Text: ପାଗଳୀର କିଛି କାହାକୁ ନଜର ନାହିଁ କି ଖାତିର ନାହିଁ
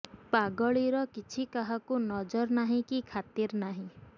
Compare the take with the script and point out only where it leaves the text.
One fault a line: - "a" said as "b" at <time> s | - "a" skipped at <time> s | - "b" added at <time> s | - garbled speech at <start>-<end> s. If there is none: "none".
none